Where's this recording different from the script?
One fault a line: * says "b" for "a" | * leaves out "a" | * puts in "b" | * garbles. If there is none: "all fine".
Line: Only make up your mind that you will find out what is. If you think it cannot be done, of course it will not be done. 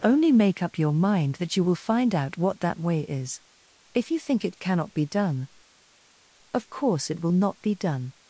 * puts in "that way"